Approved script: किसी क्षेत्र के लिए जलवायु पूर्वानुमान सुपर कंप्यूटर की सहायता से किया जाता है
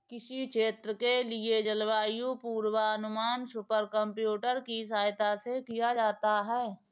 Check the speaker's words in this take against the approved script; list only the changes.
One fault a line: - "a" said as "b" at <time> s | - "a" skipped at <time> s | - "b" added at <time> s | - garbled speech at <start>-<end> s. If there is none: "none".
none